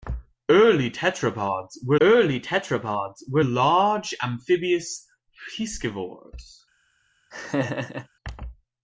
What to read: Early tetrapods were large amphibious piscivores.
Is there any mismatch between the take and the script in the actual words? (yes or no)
yes